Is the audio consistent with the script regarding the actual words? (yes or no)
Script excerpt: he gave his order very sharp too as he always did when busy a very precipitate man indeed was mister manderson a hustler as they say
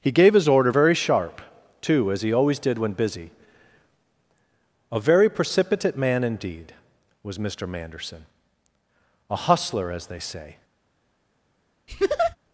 yes